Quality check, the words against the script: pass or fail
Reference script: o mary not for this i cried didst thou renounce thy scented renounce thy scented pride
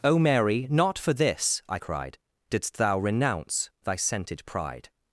fail